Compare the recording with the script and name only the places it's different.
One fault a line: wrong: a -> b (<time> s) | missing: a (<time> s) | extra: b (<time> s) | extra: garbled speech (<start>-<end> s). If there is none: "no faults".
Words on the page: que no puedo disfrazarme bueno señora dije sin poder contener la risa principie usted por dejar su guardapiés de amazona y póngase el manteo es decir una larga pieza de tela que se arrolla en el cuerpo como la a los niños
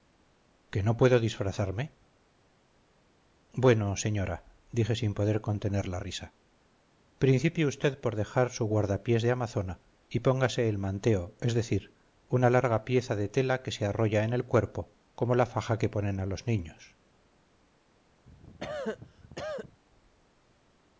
extra: faja que ponen (15.5 s)